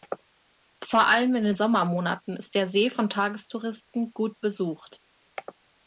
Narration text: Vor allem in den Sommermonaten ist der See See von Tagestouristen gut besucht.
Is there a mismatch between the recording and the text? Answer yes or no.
yes